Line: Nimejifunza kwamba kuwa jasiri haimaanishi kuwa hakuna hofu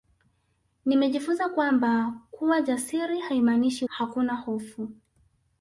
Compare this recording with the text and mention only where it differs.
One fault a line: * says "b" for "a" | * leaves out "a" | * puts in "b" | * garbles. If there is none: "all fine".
* leaves out "kuwa"